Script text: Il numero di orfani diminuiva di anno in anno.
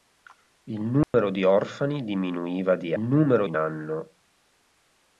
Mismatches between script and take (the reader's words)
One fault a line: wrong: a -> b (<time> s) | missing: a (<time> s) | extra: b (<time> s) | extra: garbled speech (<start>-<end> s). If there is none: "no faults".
wrong: anno -> numero (3.0 s)